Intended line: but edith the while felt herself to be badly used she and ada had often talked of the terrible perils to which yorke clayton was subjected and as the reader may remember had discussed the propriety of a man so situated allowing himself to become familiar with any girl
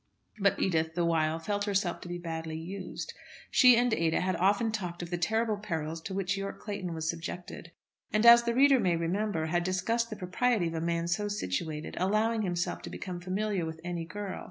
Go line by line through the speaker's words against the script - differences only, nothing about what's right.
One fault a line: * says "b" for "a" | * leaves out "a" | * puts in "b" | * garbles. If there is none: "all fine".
all fine